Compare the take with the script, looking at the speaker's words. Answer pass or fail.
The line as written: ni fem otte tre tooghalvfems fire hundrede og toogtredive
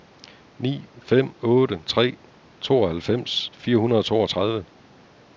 pass